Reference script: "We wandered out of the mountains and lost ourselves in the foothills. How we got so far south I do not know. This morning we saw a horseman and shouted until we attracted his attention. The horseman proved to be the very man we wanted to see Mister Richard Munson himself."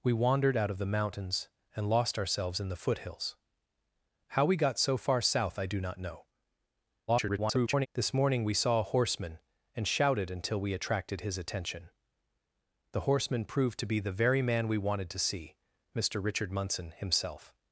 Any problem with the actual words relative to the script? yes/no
yes